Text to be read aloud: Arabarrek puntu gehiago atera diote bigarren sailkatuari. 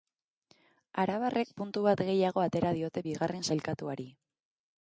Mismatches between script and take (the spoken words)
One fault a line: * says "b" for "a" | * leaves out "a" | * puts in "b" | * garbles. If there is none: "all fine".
* puts in "bat"